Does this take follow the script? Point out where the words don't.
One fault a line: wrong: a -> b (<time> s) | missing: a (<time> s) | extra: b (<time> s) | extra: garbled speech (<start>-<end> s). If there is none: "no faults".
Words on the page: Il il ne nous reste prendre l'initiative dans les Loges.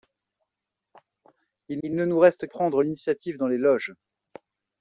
no faults